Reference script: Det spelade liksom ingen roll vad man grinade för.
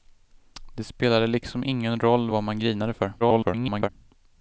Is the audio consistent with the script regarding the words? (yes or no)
no